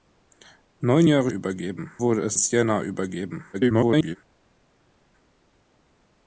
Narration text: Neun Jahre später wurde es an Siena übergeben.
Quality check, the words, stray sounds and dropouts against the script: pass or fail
fail